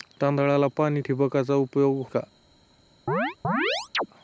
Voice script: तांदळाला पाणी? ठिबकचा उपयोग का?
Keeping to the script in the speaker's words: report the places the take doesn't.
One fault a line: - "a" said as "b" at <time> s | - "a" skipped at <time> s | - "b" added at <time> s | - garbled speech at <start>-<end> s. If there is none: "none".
none